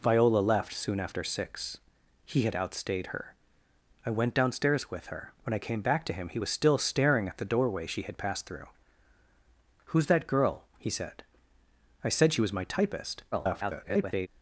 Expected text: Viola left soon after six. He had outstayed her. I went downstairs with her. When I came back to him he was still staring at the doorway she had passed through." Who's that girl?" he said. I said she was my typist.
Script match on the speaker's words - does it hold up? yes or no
no